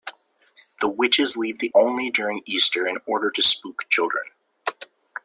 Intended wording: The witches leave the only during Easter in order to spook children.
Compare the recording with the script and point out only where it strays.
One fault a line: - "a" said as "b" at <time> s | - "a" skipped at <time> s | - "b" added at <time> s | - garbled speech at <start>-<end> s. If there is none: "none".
none